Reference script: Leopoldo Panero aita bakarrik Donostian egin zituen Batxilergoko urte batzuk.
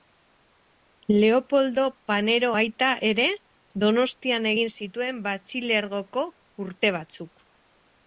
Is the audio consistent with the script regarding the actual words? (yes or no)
no